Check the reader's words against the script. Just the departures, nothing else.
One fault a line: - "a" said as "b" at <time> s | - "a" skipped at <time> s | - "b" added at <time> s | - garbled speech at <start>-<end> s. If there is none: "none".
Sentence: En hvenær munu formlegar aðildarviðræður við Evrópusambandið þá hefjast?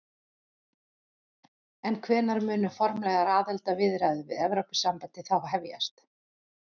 none